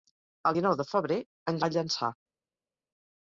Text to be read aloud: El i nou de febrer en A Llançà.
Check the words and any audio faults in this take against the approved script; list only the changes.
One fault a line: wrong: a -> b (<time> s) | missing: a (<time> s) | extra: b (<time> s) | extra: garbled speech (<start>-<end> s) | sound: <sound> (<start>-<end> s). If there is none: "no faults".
no faults